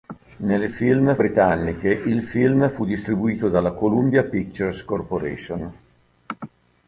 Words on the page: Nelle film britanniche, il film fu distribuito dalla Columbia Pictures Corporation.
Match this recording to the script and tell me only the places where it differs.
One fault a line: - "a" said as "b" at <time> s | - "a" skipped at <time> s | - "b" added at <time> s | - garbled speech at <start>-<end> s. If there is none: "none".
none